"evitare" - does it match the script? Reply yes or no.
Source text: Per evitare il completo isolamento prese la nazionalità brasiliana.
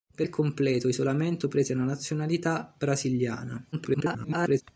no